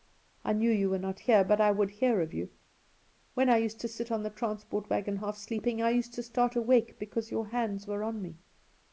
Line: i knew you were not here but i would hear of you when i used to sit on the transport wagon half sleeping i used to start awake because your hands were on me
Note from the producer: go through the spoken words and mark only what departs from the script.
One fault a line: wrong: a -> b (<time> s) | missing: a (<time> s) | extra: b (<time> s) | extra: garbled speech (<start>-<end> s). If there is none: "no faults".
no faults